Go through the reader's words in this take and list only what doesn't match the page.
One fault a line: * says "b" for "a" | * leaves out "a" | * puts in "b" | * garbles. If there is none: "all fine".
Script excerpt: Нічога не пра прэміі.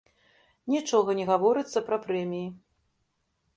* puts in "гаворыцца"